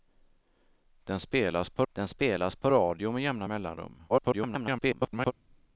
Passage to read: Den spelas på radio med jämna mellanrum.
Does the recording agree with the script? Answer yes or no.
no